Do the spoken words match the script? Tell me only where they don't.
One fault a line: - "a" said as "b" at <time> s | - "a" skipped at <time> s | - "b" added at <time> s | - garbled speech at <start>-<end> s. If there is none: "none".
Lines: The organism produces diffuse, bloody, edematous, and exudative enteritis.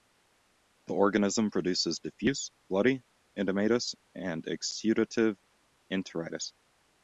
none